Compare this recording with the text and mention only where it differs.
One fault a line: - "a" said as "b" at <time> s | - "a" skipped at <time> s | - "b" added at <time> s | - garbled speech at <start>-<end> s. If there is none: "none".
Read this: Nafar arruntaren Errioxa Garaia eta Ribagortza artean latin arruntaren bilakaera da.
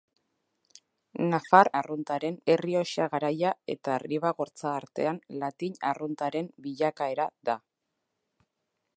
none